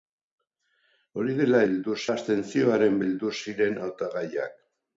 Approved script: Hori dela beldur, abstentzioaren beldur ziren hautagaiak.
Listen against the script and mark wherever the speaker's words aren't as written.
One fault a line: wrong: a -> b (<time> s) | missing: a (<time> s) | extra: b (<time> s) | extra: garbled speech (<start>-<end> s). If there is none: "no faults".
no faults